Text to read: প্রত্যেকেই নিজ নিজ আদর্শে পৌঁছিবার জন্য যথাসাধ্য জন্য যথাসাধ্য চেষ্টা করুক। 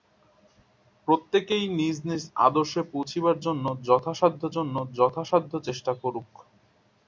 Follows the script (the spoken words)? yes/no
yes